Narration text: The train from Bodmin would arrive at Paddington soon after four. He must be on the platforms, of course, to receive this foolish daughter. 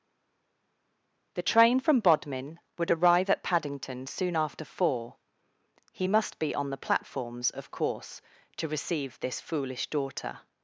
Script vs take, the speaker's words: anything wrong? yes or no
no